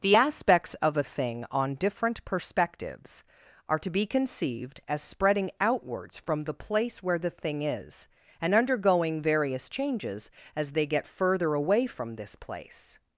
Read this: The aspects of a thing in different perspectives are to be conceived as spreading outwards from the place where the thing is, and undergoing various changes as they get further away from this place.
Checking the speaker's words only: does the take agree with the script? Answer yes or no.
no